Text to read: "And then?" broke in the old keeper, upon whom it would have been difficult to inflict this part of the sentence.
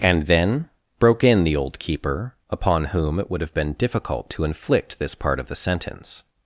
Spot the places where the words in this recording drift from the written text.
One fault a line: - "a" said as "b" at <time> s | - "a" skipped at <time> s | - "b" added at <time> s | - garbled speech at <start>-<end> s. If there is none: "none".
none